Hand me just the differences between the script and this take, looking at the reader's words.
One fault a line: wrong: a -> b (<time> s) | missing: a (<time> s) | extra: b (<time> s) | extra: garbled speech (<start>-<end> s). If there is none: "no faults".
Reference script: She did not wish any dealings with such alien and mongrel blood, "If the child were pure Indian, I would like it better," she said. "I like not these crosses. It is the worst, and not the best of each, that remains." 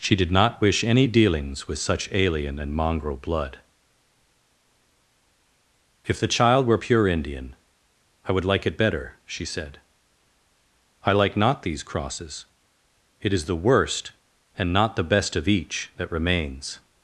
no faults